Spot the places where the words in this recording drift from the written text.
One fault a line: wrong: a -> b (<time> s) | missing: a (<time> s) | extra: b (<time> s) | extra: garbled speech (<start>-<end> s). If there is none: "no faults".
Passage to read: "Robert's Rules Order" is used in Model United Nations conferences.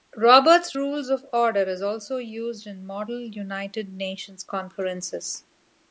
extra: of (1.1 s)
extra: also (1.8 s)